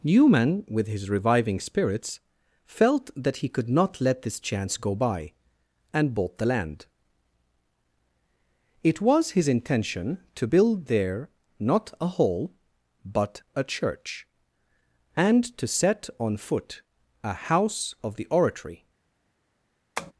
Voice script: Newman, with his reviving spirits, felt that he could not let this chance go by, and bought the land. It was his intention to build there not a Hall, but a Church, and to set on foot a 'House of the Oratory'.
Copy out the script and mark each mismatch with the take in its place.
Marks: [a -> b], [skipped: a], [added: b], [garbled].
Newman, with his reviving spirits, felt that he could not let this chance go by, and bought the land. It was his intention to build there not a Hall, but a Church, and to set on foot a 'House of the Oratory'.